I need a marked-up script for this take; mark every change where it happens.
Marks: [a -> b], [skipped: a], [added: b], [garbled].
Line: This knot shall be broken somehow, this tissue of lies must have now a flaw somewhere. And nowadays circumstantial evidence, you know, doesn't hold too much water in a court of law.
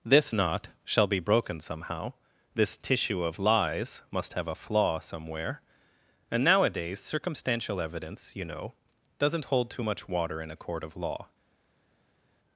This knot shall be broken somehow, this tissue of lies must have [skipped: now] a flaw somewhere. And nowadays circumstantial evidence, you know, doesn't hold too much water in a court of law.